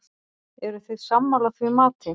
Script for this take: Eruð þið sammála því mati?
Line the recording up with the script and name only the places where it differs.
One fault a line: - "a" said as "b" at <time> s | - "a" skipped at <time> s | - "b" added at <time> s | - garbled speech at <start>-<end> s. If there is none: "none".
none